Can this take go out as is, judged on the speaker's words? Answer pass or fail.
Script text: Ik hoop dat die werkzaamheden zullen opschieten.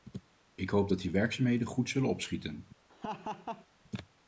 fail